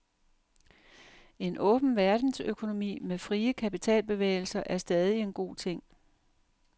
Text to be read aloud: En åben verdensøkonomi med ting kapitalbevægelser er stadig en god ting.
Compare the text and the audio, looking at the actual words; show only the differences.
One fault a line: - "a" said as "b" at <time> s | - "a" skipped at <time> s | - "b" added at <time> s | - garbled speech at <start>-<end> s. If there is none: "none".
- "ting" said as "frie" at 3.2 s